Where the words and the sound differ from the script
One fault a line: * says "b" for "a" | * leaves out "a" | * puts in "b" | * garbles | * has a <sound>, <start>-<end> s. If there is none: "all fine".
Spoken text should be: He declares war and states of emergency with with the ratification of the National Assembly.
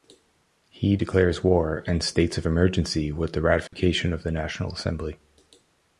* leaves out "with"
* has a dropout, 3.7-3.7 s